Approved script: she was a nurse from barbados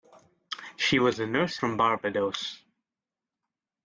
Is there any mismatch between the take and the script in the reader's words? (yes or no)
no